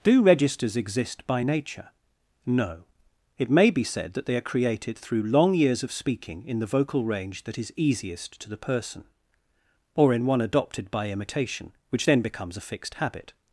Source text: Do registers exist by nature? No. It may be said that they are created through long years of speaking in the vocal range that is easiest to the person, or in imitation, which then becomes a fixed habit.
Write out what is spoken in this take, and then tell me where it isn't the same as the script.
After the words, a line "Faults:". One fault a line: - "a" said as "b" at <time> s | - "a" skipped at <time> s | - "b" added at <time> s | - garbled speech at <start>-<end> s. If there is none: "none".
Do registers exist by nature? No. It may be said that they are created through long years of speaking in the vocal range that is easiest to the person, or in one adopted by imitation, which then becomes a fixed habit.
Faults:
- "one adopted by" added at 10.3 s